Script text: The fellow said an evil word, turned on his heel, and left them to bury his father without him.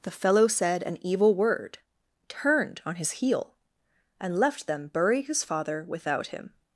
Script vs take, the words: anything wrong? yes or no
yes